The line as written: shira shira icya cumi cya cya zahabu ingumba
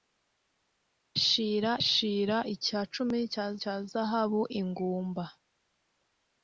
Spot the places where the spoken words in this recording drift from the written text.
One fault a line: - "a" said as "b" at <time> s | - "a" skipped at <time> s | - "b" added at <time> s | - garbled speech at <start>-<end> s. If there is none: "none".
none